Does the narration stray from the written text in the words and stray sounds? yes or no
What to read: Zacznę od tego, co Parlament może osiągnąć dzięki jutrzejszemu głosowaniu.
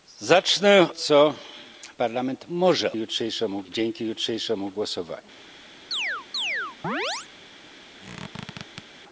yes